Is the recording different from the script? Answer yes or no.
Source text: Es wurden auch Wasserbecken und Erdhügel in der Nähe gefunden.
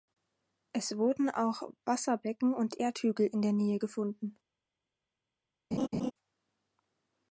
no